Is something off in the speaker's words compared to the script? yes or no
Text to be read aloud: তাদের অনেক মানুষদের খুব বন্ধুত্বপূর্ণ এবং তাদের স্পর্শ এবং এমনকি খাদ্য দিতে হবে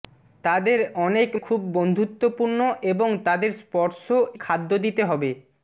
yes